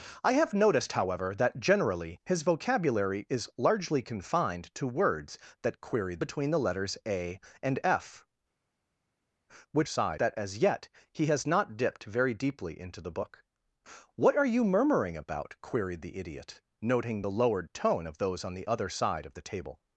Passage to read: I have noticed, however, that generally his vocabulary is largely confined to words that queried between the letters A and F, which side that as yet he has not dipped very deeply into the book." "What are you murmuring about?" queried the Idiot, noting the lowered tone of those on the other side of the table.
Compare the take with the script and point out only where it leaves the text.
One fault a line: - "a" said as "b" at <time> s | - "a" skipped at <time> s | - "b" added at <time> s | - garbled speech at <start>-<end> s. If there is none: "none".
none